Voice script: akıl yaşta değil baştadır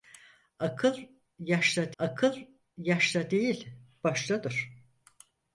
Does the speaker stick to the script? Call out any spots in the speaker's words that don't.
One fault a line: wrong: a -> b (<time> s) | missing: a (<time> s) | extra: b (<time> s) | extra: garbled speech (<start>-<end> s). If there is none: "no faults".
extra: akıl yaşta (2.0 s)